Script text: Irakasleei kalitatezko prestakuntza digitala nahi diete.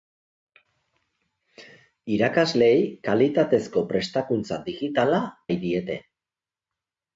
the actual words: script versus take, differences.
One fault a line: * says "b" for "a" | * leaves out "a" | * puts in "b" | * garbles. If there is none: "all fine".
all fine